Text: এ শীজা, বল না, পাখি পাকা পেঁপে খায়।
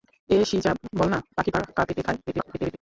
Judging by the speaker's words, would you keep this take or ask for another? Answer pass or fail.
fail